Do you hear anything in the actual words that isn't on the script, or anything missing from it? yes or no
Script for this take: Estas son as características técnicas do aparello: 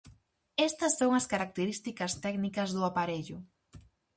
no